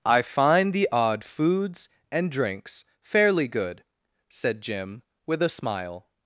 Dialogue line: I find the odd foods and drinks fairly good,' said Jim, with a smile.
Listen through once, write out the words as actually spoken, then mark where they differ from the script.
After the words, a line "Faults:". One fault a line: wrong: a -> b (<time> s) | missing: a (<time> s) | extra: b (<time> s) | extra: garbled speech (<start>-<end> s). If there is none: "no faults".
I find the odd foods and drinks fairly good,' said Jim, with a smile.
Faults:
no faults